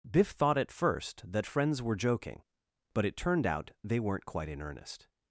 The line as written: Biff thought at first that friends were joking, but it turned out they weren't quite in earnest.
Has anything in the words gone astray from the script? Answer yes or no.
no